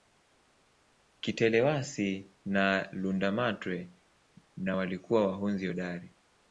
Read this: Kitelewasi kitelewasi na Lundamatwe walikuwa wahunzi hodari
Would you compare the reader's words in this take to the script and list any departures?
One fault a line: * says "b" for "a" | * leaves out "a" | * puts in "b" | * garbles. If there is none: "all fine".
* leaves out "kitelewasi"
* puts in "na"